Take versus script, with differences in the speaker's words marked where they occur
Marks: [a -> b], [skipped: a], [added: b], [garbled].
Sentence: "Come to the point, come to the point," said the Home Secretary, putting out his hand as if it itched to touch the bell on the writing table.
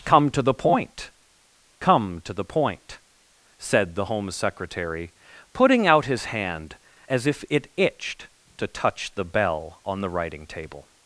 "Come to the point, come to the point," said the Home Secretary, putting out his hand as if it itched to touch the bell on the writing table.